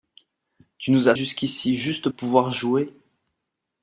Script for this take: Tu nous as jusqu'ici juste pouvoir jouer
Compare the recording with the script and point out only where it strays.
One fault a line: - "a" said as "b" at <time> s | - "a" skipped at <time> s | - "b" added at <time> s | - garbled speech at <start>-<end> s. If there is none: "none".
none